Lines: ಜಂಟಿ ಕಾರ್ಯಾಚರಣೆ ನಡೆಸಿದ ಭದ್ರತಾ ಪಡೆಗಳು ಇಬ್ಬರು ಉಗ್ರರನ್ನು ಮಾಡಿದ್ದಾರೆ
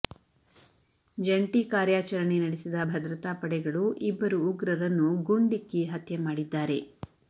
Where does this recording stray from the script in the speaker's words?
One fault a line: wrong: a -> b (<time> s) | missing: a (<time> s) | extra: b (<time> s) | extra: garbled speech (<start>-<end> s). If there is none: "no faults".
extra: ಗುಂಡಿಕ್ಕಿ ಹತ್ಯೆ (5.3 s)